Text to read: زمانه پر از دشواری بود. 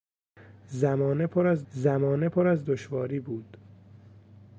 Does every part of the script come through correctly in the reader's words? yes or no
no